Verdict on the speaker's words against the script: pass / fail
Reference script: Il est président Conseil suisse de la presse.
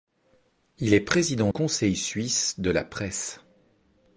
pass